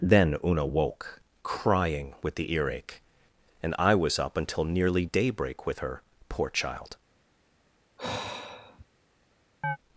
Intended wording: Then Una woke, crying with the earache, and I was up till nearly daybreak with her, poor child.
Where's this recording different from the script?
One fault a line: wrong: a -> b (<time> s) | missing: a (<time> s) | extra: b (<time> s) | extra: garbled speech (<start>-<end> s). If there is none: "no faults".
wrong: till -> until (4.3 s)